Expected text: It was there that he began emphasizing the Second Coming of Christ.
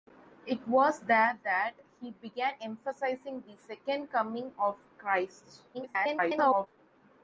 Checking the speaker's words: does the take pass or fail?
fail